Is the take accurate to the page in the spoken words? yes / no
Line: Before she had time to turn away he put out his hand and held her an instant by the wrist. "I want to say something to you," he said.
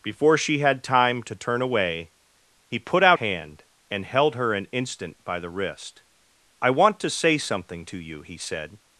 no